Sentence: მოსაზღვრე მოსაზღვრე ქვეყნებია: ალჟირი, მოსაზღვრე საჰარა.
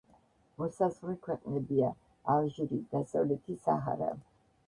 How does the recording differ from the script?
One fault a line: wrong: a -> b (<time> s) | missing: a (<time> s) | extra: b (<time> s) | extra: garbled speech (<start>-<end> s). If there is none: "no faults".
missing: მოსაზღვრე (1.1 s)
wrong: მოსაზღვრე -> დასავლეთი (3.0 s)